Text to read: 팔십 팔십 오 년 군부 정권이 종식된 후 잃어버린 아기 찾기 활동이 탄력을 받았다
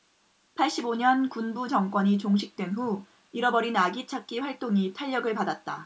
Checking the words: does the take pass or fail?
fail